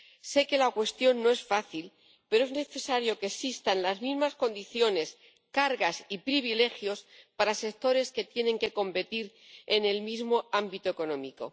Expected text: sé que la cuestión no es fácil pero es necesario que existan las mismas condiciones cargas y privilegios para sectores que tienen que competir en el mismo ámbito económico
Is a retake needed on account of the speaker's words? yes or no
no